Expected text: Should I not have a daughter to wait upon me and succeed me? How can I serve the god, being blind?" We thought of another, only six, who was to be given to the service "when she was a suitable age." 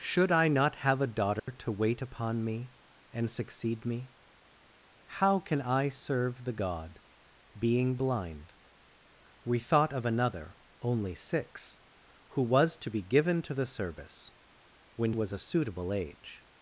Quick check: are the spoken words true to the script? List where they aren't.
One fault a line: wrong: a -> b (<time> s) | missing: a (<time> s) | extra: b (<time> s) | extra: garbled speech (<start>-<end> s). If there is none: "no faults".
missing: she (15.1 s)